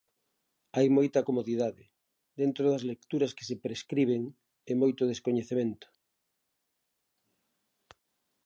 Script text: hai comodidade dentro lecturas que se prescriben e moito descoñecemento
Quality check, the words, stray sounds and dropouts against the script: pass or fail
fail